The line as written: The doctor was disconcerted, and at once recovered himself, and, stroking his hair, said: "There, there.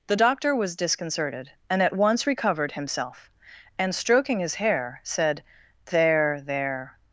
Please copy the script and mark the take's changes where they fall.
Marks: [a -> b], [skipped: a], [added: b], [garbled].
The doctor was disconcerted, and at once recovered himself, and, stroking his hair, said: "There, there.